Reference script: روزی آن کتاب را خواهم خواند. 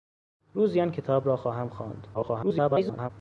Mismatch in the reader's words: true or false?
true